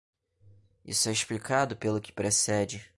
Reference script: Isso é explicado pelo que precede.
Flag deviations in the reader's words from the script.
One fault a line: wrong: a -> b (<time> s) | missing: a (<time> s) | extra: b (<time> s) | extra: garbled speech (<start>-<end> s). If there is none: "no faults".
no faults